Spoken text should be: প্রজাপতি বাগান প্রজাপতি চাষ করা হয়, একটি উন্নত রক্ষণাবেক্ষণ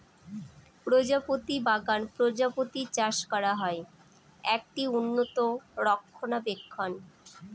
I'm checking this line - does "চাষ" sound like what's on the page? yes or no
yes